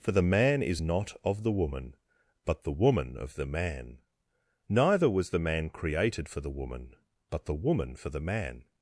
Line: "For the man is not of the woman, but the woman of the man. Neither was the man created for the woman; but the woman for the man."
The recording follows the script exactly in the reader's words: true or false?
true